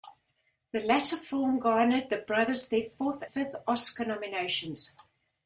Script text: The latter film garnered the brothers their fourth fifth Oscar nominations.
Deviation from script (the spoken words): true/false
false